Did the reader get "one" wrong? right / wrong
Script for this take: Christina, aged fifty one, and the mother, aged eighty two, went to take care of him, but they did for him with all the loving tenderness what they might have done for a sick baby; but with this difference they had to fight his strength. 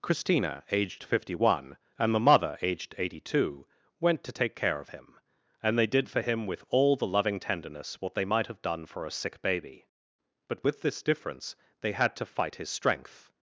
right